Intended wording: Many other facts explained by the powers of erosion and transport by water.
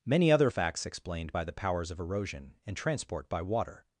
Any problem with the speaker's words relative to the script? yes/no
no